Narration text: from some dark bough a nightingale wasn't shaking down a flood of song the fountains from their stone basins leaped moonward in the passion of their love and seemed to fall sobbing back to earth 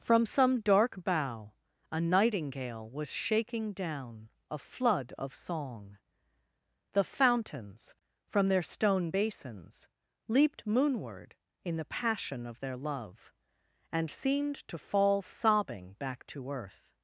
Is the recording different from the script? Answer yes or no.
yes